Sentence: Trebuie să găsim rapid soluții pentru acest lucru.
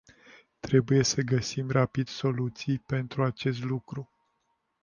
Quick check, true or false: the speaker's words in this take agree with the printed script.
true